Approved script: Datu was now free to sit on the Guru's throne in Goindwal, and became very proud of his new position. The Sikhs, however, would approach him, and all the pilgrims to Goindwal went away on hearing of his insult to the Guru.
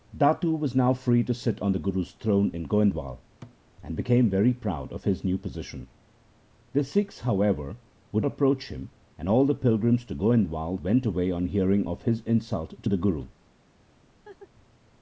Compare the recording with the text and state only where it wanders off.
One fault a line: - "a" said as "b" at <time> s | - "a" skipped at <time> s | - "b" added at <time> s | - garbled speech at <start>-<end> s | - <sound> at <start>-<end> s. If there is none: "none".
- thud at 3.4-3.6 s
- laugh at 14.3-14.5 s